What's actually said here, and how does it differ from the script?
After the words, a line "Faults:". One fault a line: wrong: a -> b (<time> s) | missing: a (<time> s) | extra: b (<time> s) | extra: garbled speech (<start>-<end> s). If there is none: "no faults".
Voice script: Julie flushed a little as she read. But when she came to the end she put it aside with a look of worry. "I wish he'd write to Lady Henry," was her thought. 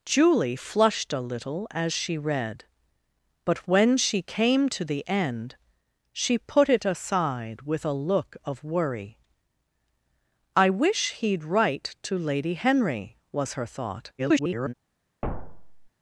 Julie flushed a little as she read. But when she came to the end she put it aside with a look of worry. "I wish he'd write to Lady Henry," was her thought. [garbled]
Faults:
extra: garbled speech (14.2-14.7 s)